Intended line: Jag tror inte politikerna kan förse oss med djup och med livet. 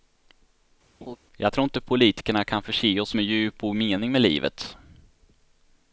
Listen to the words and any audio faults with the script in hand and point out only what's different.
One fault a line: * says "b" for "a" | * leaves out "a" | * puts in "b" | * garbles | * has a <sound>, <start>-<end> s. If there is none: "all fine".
* has a laugh, 1.0-1.2 s
* puts in "mening"